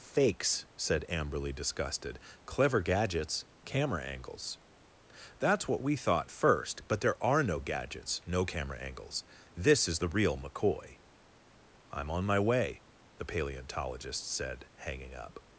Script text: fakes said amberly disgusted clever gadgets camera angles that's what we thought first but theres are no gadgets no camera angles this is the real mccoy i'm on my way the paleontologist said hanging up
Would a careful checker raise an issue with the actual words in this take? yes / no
yes